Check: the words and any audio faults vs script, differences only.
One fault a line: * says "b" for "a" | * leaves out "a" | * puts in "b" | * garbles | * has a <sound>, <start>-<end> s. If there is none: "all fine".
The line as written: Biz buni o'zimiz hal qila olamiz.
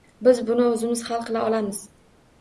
all fine